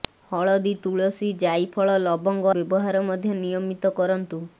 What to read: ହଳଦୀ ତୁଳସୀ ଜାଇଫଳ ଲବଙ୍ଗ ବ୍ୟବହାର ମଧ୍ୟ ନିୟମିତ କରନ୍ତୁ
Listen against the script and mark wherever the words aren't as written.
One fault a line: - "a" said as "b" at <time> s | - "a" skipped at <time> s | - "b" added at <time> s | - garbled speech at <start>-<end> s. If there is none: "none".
none